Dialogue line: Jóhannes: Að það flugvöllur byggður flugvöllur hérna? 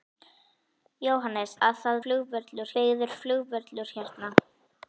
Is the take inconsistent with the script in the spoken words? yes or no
no